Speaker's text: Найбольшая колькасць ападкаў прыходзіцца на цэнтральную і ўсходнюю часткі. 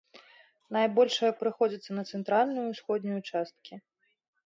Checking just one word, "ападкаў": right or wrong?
wrong